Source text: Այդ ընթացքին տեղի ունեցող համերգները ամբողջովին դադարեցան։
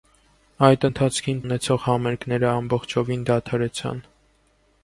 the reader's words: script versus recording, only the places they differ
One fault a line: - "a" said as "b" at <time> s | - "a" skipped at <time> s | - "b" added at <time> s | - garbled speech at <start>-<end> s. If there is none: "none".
- "տեղի" skipped at 1.4 s